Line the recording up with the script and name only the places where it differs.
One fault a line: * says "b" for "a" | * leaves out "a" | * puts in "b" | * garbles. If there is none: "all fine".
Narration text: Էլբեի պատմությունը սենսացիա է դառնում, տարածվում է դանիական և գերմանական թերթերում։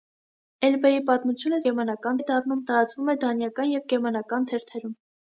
* says "գերմանական" for "սենսացիա"